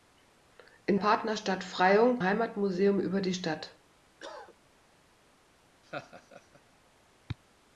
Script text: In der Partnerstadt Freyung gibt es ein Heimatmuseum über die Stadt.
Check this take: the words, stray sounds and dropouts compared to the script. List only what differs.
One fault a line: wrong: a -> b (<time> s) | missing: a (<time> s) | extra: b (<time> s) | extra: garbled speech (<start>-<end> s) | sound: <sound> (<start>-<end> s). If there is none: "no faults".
missing: der (1.0 s)
missing: gibt es ein (2.2 s)
sound: cough (4.2-4.5 s)
sound: laugh (5.8-6.6 s)